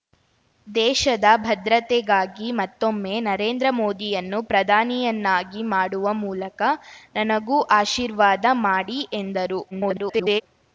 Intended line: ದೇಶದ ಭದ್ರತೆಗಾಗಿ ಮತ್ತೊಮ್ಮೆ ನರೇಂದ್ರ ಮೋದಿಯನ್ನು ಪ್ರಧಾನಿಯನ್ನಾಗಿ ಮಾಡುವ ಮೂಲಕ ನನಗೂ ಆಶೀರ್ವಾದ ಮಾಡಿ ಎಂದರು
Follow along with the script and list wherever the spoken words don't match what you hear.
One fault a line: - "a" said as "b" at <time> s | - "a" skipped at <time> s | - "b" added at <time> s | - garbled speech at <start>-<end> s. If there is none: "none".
- garbled speech at 9.7-10.4 s